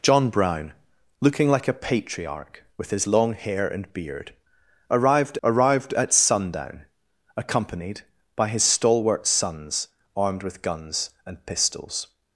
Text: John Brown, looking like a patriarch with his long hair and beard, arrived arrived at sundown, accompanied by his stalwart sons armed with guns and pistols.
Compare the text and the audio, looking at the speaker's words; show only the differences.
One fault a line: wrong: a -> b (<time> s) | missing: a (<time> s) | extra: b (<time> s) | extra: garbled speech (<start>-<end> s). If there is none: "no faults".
no faults